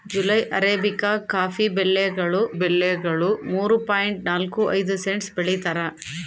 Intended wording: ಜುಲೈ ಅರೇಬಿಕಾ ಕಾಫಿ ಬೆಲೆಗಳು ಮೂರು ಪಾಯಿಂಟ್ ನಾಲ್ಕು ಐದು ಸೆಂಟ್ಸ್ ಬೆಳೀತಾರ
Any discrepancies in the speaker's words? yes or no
yes